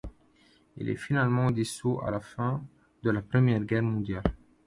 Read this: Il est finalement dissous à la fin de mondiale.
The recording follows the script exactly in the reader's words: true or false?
false